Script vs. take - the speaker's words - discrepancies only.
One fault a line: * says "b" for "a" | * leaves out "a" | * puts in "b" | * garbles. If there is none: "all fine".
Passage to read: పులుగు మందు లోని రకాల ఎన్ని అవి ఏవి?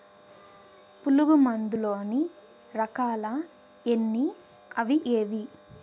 all fine